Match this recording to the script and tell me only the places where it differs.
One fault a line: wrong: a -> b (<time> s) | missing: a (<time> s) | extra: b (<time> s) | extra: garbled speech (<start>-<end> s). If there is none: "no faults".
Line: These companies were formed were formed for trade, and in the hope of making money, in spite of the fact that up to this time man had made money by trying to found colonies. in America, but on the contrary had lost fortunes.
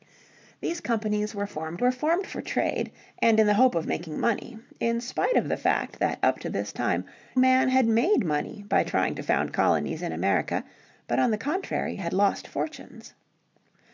no faults